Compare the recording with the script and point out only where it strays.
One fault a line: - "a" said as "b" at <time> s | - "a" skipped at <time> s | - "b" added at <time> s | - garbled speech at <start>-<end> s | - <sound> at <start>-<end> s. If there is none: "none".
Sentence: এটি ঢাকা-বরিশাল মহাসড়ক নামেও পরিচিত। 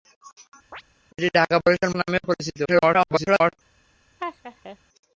- chirp at 0.7-0.8 s
- "মহাসড়ক" skipped at 1.9 s
- garbled speech at 2.6-3.5 s
- laugh at 4.2-4.8 s